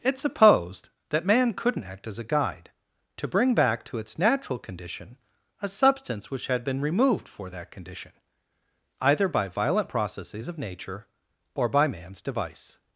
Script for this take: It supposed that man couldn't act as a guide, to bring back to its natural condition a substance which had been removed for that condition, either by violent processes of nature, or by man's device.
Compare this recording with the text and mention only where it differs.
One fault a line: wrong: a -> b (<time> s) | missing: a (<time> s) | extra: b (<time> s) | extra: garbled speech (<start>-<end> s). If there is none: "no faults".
no faults